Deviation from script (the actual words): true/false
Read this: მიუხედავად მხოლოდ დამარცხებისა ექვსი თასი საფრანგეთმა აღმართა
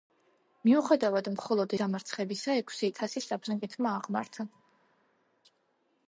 false